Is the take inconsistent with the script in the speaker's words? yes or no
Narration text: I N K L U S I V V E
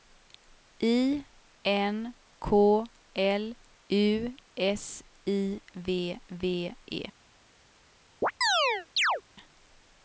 no